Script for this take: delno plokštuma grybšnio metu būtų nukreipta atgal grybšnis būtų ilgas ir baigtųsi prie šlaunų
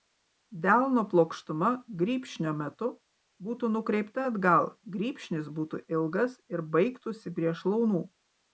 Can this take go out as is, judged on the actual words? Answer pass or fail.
pass